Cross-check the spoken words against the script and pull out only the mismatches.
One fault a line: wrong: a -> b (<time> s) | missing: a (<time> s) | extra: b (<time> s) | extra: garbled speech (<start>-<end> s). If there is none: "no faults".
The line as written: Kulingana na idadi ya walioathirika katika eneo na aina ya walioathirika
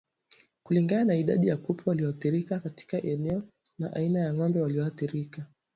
extra: kupe (1.6 s)
extra: ng'ombe (4.3 s)